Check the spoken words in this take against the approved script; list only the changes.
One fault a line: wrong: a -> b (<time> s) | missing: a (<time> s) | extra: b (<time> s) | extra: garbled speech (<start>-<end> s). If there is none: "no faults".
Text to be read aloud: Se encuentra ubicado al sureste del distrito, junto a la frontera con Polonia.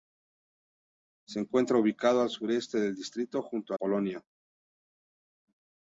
missing: la frontera con (3.8 s)